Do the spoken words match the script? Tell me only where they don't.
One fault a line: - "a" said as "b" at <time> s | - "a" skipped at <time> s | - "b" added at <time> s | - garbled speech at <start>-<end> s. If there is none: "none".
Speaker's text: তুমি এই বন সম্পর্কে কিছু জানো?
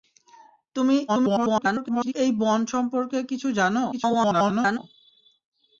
- garbled speech at 1.1-2.1 s
- garbled speech at 3.9-4.8 s